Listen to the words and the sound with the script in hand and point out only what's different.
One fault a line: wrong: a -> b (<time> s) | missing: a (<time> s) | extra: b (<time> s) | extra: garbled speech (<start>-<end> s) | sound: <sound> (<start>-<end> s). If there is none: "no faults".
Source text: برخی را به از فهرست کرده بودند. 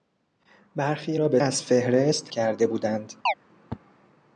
sound: chirp (3.3-3.3 s)